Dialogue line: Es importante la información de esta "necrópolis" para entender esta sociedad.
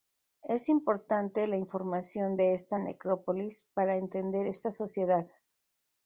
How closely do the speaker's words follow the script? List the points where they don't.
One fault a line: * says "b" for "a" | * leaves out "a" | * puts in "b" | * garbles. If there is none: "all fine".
all fine